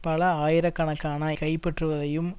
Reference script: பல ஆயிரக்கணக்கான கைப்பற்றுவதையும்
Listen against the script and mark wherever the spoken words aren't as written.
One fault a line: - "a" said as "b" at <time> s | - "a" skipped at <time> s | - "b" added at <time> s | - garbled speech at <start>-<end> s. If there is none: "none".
none